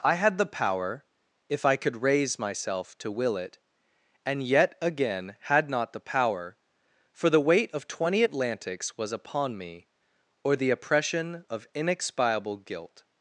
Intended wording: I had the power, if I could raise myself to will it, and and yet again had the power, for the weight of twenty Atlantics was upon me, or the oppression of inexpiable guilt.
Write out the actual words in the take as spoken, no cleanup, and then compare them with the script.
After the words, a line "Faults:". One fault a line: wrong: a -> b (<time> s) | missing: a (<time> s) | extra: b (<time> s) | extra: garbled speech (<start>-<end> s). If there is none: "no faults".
I had the power, if I could raise myself to will it, and yet again had not the power, for the weight of twenty Atlantics was upon me, or the oppression of inexpiable guilt.
Faults:
missing: and (4.4 s)
extra: not (5.7 s)